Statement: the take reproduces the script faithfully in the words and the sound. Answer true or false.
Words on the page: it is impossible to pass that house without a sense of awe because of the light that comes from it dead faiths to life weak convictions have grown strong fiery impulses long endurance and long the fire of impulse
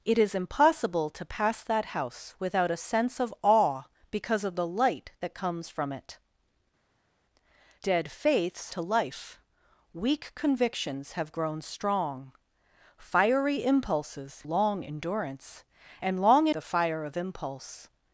true